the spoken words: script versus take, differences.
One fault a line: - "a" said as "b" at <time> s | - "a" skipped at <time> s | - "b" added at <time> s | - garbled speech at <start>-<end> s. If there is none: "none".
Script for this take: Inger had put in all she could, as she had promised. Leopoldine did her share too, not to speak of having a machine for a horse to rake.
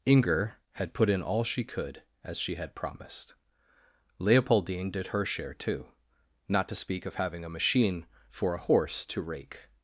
none